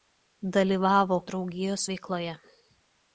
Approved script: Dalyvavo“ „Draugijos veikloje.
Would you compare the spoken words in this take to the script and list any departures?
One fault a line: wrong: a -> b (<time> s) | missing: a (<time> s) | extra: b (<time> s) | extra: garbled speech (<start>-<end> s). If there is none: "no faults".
no faults